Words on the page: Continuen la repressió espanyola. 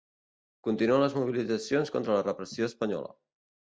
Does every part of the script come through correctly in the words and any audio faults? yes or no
no